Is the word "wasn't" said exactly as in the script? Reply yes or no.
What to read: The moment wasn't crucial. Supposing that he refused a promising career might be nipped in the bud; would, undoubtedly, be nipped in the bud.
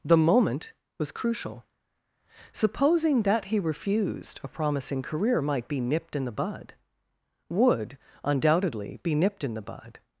no